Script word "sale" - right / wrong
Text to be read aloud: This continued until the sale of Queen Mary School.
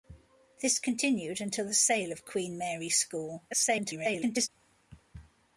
right